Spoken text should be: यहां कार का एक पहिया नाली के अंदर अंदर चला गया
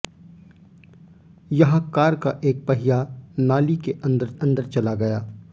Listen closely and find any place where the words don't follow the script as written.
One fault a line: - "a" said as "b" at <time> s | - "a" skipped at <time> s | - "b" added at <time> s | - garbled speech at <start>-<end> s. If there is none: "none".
none